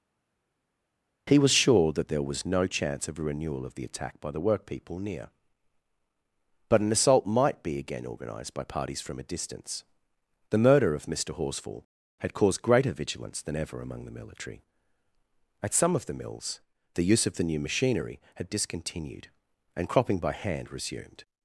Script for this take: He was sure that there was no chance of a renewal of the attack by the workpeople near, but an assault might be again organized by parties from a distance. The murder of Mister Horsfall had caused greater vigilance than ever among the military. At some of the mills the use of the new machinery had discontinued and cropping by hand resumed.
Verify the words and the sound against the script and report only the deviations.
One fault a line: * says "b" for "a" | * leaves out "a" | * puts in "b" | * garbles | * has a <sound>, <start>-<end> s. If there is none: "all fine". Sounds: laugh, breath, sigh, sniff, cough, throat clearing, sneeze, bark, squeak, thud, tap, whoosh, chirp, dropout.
all fine